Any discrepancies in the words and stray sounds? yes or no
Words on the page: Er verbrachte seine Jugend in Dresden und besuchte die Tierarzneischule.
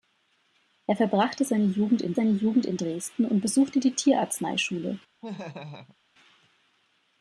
yes